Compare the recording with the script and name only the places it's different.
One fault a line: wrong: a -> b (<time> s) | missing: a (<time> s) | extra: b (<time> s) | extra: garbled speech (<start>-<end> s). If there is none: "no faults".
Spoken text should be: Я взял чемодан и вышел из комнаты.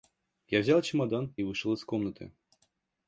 no faults